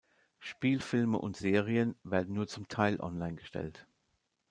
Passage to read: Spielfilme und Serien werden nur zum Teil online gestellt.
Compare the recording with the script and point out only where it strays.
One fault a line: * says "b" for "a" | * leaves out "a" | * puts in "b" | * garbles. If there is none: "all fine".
all fine